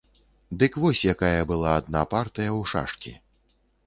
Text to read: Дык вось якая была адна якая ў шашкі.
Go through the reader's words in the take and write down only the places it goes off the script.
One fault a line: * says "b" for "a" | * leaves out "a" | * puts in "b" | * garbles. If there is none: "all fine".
* says "партыя" for "якая"